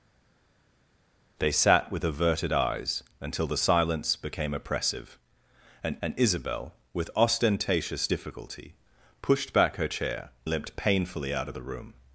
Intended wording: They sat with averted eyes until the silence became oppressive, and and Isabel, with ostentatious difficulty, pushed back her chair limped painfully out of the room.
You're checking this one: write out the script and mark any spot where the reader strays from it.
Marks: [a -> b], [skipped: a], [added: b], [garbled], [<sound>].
They sat with averted eyes until the silence became oppressive, and and Isabel, with ostentatious difficulty, pushed back her chair limped painfully out of the room.